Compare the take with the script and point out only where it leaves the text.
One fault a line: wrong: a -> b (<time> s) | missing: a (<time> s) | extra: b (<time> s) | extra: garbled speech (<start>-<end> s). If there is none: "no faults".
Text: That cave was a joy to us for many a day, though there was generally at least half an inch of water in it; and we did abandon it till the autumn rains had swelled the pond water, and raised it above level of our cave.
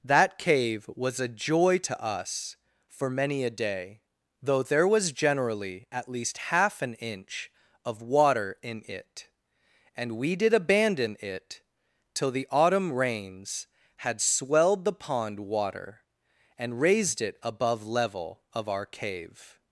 no faults